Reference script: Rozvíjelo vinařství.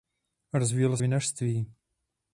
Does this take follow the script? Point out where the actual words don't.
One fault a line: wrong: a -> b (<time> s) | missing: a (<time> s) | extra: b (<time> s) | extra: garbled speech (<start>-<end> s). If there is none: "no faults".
no faults